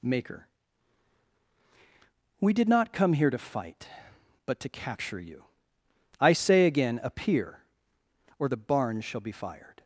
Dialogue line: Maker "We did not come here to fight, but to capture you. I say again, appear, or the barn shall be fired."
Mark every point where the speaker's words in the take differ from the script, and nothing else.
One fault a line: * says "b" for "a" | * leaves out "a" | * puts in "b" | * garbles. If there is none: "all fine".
all fine